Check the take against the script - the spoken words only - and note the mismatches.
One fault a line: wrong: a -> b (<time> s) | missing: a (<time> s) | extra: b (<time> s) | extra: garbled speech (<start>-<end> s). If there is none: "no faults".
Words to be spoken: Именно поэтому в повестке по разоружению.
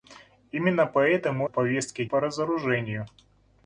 no faults